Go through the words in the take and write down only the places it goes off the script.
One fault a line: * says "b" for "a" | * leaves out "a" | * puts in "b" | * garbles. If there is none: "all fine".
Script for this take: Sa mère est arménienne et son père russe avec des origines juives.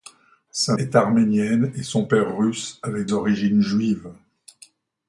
* leaves out "mère"
* leaves out "des"